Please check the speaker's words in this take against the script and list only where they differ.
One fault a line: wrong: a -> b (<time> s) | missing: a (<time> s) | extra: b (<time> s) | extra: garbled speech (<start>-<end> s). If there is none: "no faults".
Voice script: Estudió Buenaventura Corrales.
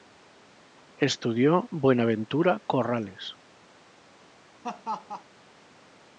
no faults